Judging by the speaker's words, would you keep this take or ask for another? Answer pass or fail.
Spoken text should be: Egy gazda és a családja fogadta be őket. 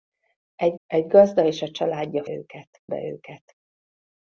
fail